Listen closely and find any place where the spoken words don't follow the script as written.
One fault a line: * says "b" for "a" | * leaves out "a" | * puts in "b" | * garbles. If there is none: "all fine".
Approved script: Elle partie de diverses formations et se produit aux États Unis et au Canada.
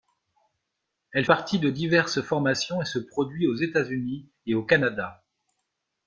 all fine